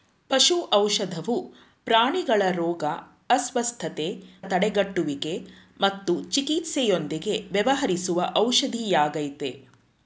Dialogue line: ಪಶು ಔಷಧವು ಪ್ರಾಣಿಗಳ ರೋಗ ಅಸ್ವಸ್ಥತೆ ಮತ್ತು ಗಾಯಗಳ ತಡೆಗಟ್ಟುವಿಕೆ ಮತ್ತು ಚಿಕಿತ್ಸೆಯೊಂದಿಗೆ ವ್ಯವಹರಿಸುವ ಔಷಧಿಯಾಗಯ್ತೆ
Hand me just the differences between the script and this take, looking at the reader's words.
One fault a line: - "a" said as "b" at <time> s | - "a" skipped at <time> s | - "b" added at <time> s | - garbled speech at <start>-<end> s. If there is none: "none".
- "ಮತ್ತು ಗಾಯಗಳ" skipped at 4.1 s